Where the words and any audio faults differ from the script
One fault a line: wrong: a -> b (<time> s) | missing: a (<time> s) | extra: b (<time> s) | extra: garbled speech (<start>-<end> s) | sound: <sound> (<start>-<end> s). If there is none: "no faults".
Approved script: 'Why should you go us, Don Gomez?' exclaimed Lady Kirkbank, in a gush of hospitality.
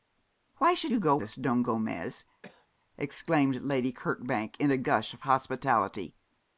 sound: cough (2.4-2.7 s)